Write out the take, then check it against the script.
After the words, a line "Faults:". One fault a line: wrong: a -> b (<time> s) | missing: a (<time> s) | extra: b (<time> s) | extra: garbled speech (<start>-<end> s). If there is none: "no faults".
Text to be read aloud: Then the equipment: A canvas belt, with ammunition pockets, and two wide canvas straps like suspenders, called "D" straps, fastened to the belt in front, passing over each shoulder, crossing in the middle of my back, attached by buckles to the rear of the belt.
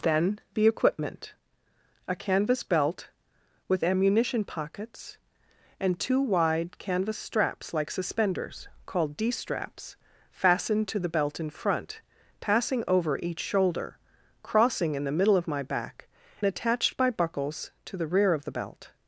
Then the equipment: A canvas belt, with ammunition pockets, and two wide canvas straps like suspenders, called "D" straps, fastened to the belt in front, passing over each shoulder, crossing in the middle of my back, attached by buckles to the rear of the belt.
Faults:
no faults